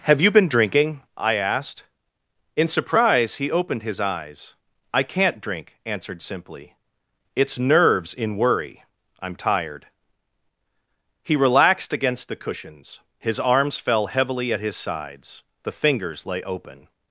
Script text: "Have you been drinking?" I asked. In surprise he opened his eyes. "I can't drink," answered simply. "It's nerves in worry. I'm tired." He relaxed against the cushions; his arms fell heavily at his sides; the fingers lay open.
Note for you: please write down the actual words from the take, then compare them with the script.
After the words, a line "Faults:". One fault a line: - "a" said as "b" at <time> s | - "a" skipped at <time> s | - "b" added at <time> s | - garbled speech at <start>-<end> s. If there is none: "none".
"Have you been drinking?" I asked. In surprise he opened his eyes. "I can't drink," answered simply. "It's nerves in worry. I'm tired." He relaxed against the cushions; his arms fell heavily at his sides; the fingers lay open.
Faults:
none